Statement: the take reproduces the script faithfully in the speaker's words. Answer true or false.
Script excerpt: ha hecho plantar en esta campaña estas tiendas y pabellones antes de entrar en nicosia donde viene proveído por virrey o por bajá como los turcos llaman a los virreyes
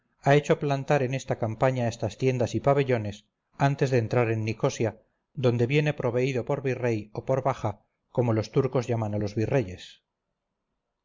true